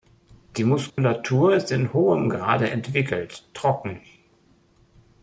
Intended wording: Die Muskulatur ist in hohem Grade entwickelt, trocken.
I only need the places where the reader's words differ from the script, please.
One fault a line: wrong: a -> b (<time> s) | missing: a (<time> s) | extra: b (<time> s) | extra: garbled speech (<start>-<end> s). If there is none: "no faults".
no faults